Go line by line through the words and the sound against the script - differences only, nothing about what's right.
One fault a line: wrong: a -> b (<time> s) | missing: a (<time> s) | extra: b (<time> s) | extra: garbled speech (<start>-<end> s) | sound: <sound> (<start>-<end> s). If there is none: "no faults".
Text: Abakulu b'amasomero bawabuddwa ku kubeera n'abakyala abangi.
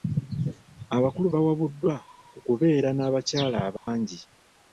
missing: b'amasomero (1.3 s)
sound: dropout (3.8-3.9 s)